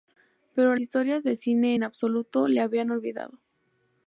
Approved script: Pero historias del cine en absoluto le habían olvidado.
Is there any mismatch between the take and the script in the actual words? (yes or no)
no